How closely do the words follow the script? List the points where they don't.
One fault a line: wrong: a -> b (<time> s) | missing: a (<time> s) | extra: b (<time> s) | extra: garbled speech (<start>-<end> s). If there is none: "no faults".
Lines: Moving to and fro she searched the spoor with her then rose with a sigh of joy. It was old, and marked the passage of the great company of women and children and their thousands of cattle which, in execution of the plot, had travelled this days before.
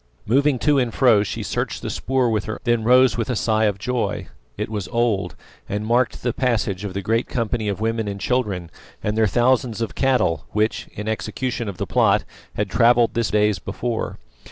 no faults